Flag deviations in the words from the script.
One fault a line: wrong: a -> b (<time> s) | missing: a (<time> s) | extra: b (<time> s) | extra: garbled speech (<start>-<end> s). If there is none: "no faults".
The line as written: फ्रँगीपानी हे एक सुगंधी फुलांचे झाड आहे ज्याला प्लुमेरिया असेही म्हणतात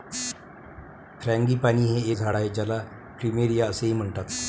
missing: एक सुगंधी फुलांचे (2.1 s)